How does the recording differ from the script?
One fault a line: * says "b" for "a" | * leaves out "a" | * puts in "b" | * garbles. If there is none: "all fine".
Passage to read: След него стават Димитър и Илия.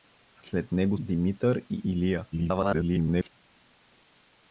* leaves out "стават"
* garbles